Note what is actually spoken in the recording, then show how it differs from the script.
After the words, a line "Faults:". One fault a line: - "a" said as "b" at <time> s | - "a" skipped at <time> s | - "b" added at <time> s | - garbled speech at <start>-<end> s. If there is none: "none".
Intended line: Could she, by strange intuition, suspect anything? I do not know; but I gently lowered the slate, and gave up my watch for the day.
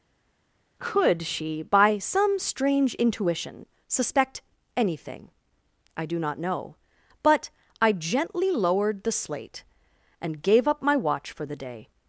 Could she, by some strange intuition, suspect anything? I do not know; but I gently lowered the slate, and gave up my watch for the day.
Faults:
- "some" added at 2.0 s